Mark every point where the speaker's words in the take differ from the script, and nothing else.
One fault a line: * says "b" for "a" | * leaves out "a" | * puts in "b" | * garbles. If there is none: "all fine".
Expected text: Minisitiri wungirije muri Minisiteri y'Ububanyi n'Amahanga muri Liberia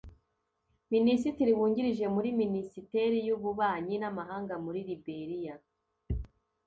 all fine